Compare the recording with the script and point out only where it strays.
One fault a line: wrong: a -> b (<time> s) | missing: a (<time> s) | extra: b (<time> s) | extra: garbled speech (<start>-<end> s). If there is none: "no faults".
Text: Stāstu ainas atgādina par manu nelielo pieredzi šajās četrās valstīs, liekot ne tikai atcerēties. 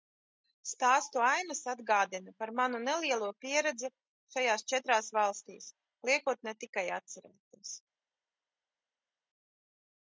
no faults